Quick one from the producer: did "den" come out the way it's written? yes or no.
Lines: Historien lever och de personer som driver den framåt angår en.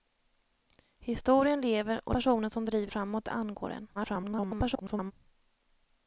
no